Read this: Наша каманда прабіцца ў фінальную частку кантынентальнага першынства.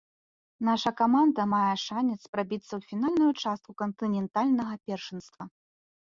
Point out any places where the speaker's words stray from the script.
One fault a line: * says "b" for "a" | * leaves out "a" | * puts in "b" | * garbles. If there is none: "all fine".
* puts in "мае шанец"